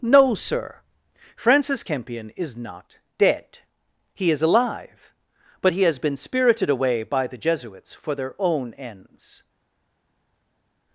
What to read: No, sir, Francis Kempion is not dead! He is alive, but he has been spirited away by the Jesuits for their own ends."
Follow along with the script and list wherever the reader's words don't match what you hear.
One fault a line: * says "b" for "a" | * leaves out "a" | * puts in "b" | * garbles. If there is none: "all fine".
all fine